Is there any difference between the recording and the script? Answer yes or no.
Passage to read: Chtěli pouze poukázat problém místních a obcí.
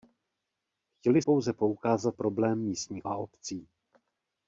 no